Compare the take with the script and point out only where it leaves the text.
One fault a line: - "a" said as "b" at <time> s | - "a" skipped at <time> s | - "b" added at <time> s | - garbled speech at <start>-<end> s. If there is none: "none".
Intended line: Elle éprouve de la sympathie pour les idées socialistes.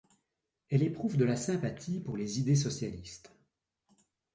none